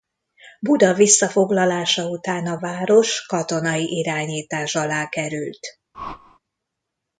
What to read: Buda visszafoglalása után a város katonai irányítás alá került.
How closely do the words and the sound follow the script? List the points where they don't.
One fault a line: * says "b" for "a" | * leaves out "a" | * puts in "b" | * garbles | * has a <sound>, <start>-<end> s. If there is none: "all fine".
* has a whoosh, 5.9-6.4 s